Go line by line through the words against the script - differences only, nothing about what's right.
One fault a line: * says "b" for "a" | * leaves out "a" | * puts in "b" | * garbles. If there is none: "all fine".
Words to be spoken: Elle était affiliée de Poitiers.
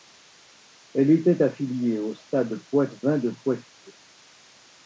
* puts in "au Stade Poitevin"